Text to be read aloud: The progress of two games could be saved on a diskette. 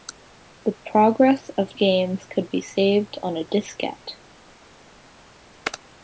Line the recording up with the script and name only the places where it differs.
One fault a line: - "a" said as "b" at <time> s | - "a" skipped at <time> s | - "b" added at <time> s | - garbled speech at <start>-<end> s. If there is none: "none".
- "two" skipped at 1.8 s